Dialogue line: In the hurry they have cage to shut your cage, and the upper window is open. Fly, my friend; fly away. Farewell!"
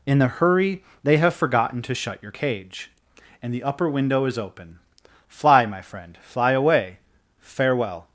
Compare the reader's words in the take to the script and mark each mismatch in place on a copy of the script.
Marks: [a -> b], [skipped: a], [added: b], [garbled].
In the hurry they have [cage -> forgotten] to shut your cage, and the upper window is open. Fly, my friend; fly away. Farewell!"